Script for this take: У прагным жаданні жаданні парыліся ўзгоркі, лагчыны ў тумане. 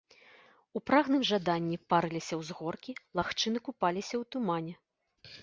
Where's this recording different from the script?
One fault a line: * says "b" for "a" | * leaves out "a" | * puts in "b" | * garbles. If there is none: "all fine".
* leaves out "жаданні"
* puts in "купаліся"